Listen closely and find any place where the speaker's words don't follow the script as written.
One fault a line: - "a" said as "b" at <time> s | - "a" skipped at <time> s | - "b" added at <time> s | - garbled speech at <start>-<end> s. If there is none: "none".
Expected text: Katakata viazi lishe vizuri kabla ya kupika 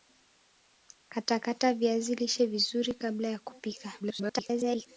- garbled speech at 4.0-4.9 s